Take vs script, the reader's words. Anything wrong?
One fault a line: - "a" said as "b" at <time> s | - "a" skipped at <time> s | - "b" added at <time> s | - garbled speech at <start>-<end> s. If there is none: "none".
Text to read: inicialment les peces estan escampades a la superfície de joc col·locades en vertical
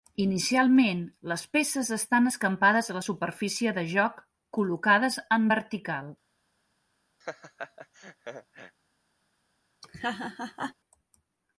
none